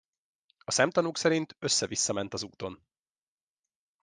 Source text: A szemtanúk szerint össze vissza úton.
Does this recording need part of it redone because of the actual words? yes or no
yes